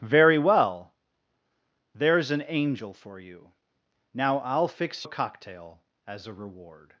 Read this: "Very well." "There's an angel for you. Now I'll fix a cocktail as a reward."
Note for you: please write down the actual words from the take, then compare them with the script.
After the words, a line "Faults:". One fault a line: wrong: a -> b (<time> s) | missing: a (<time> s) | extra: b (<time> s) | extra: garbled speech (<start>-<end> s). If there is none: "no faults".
"Very well." "There's an angel for you. Now I'll fix a cocktail as a reward."
Faults:
no faults